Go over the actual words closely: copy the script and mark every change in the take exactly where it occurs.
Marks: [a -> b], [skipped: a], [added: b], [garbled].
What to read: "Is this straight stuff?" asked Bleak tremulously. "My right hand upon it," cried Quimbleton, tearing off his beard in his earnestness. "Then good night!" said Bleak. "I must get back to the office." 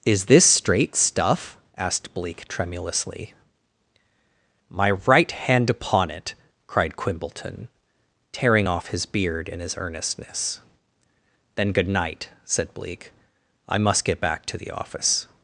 "Is this straight stuff?" asked Bleak tremulously. "My right hand upon it," cried Quimbleton, tearing off his beard in his earnestness. "Then good night!" said Bleak. "I must get back to the office."